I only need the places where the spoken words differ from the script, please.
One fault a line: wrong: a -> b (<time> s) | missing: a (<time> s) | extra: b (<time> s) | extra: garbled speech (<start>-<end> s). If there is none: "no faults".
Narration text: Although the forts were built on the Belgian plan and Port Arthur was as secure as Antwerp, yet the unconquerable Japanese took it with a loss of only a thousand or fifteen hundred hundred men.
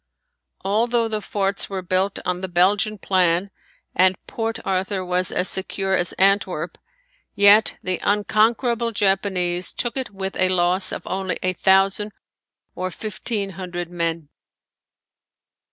missing: hundred (13.9 s)